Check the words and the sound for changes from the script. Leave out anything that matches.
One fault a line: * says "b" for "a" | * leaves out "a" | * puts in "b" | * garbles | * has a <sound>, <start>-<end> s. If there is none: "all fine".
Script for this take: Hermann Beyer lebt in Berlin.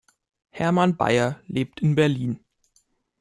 all fine